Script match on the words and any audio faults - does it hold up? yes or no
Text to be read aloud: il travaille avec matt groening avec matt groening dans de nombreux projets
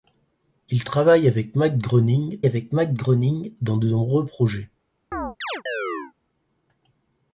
no